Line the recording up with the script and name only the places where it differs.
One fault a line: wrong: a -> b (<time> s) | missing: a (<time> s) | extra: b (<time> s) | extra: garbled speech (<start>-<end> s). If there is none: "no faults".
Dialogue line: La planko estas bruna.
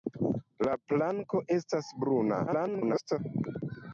extra: garbled speech (2.5-3.2 s)